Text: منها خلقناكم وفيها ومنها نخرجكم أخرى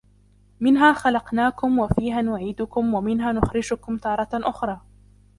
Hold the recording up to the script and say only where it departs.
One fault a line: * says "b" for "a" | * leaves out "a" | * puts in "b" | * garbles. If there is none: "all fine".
* puts in "نعيدكم"
* puts in "تارة"